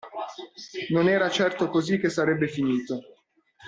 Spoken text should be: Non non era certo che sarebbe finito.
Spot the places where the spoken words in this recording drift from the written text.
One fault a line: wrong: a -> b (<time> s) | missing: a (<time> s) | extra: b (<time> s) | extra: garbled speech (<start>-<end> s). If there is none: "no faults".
missing: non (1.1 s)
extra: così (1.7 s)